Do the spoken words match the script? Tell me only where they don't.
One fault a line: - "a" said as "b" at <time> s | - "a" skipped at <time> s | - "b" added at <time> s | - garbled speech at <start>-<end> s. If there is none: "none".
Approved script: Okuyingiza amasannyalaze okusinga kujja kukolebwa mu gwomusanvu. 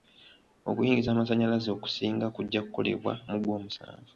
none